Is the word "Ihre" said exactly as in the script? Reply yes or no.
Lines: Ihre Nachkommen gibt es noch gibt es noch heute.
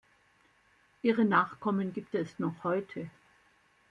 yes